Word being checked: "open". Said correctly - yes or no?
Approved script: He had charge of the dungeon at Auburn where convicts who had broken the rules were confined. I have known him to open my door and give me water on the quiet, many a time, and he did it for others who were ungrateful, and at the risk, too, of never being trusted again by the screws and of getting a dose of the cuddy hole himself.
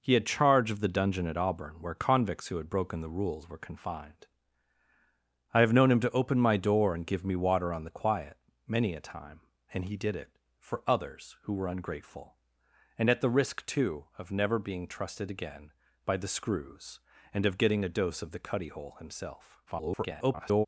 yes